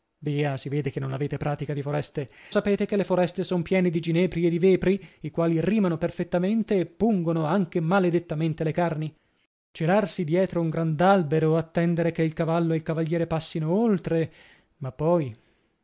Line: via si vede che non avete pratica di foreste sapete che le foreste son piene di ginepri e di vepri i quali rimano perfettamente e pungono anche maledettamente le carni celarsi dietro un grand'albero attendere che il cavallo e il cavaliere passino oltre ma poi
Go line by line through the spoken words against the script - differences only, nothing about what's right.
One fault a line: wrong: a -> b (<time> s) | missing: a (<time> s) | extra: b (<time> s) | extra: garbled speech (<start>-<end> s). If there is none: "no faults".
no faults